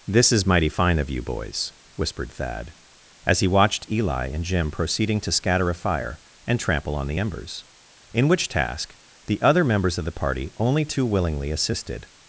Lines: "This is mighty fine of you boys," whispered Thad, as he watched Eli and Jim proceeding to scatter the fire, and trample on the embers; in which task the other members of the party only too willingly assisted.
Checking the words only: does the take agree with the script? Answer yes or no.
no